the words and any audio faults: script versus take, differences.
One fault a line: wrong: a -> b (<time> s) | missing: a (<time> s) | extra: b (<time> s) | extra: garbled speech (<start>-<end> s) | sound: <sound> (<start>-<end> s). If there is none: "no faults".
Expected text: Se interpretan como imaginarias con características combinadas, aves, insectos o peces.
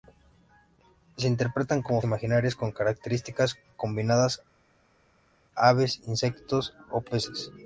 no faults